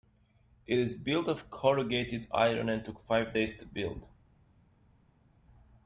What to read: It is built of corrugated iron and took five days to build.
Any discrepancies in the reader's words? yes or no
no